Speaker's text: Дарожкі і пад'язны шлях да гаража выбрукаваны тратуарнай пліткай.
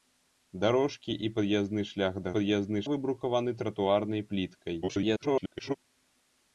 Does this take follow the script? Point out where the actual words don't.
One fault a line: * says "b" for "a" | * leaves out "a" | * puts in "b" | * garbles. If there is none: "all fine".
* says "пад'язны" for "гаража"
* garbles